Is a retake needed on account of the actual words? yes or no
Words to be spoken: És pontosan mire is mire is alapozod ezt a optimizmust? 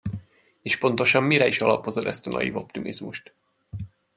yes